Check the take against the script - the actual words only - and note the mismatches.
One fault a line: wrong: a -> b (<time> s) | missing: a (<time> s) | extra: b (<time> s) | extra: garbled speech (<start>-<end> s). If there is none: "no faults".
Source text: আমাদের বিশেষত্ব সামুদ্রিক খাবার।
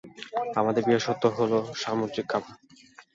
extra: হলো (1.4 s)